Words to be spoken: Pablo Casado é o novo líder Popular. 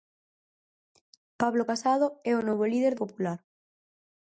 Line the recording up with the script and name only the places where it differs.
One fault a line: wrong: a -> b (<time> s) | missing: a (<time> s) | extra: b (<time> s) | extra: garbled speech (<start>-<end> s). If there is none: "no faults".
no faults